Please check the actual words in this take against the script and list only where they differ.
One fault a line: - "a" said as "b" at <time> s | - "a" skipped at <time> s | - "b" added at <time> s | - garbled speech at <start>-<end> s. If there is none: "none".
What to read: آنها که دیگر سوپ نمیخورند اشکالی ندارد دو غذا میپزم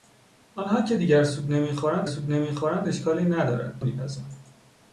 - "سوپ نمیخورند" added at 2.0 s
- "دو غذا" skipped at 3.8 s